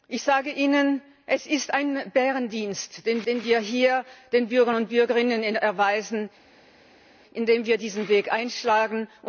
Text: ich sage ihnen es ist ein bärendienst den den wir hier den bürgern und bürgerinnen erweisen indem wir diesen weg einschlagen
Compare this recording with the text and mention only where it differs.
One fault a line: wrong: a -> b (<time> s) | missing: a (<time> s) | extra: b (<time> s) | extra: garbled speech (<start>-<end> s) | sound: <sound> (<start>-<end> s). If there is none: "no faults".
no faults